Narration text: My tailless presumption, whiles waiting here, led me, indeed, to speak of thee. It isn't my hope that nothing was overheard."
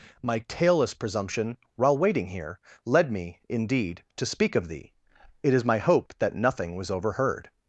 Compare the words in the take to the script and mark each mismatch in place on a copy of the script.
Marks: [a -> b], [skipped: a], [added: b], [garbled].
My tailless presumption, [whiles -> while] waiting here, led me, indeed, to speak of thee. It [isn't -> is] my hope that nothing was overheard."